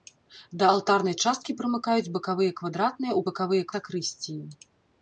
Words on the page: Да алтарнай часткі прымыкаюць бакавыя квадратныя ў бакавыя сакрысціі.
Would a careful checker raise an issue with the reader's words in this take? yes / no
no